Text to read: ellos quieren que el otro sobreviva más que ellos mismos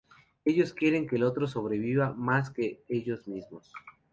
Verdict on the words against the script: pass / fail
pass